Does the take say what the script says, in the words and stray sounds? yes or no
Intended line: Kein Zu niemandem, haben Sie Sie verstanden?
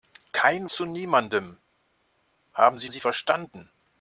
yes